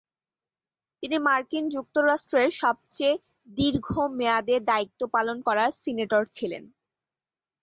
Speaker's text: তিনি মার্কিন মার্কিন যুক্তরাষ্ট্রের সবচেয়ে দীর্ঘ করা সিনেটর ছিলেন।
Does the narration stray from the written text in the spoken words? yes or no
yes